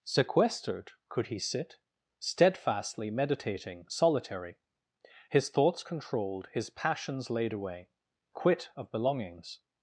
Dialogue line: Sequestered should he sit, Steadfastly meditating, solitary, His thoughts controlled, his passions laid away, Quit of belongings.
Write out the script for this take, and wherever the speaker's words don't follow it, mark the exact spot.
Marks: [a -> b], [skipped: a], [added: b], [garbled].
Sequestered [should -> could] he sit, Steadfastly meditating, solitary, His thoughts controlled, his passions laid away, Quit of belongings.